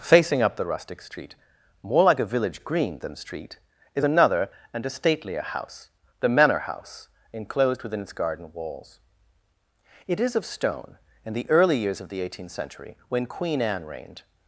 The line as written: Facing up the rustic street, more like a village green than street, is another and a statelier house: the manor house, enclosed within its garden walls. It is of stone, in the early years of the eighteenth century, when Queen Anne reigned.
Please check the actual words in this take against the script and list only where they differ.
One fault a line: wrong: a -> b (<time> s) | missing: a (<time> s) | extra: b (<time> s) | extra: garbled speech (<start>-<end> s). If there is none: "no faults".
no faults